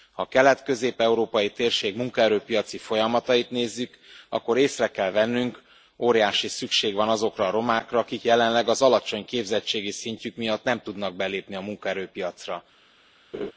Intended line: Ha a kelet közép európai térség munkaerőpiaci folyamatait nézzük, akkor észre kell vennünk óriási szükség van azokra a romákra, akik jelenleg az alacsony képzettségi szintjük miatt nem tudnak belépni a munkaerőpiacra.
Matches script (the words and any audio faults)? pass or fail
fail